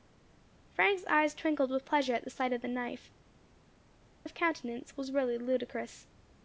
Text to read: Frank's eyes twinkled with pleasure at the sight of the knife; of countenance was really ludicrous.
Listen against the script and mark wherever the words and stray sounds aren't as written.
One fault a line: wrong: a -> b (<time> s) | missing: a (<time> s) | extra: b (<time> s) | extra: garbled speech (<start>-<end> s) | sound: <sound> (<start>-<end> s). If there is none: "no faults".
no faults